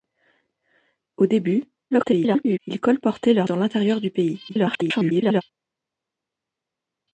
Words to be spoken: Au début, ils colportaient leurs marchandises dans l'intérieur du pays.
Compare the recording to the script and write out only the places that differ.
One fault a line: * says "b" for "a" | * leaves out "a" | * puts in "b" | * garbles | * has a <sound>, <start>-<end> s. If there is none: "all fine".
* garbles
* leaves out "marchandises"
* garbles